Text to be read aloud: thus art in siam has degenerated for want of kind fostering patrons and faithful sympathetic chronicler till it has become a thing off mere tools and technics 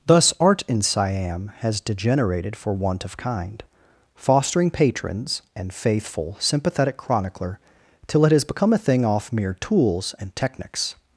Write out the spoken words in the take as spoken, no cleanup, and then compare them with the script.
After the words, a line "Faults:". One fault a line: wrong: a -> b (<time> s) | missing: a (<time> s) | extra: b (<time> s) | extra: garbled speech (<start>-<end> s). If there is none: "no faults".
thus art in siam has degenerated for want of kind fostering patrons and faithful sympathetic chronicler till it has become a thing off mere tools and technics
Faults:
no faults